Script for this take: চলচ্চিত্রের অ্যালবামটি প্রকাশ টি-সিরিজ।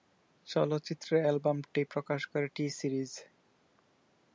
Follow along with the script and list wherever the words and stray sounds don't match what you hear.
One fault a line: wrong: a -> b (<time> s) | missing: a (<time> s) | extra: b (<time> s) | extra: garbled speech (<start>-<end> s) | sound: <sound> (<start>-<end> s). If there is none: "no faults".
extra: করে (2.3 s)